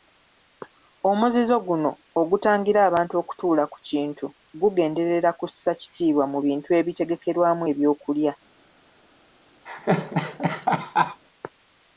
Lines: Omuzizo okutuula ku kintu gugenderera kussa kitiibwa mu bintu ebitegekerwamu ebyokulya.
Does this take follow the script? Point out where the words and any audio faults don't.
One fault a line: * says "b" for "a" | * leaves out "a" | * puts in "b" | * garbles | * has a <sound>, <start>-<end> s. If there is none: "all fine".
* puts in "guno ogutangira abantu"
* has a laugh, 9.7-11.2 s